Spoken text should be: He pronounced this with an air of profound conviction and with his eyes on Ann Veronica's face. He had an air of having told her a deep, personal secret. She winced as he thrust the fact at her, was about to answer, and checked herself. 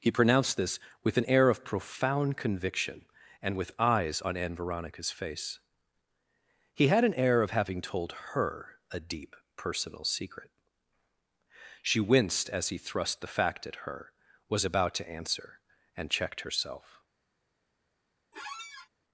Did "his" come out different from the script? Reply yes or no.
yes